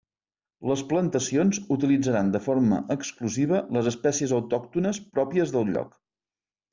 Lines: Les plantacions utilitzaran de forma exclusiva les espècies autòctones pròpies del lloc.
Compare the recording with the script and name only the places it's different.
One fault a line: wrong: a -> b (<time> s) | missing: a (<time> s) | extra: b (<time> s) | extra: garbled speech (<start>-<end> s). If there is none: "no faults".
no faults